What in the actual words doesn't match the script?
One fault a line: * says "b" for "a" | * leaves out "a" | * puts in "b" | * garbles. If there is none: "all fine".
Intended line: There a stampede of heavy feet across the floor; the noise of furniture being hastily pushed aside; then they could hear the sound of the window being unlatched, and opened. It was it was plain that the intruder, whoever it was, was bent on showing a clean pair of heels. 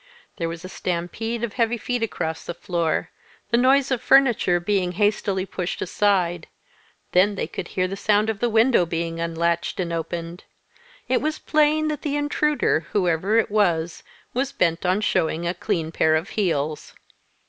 * puts in "was"
* leaves out "it was"